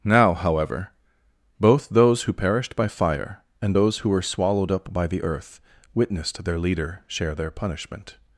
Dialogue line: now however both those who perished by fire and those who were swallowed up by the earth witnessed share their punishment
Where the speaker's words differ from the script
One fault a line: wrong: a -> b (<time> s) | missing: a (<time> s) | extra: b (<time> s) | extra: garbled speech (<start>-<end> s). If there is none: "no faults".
extra: their leader (6.4 s)